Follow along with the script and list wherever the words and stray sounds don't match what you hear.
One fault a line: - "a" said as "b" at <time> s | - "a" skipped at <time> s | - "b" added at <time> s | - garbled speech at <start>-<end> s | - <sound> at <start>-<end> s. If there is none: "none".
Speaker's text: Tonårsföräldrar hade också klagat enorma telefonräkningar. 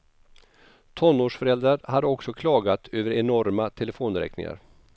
- "över" added at 2.9 s